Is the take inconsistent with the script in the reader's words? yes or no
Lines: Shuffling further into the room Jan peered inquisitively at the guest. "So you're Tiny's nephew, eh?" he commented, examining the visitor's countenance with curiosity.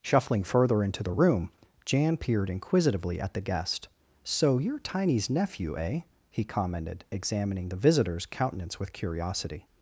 no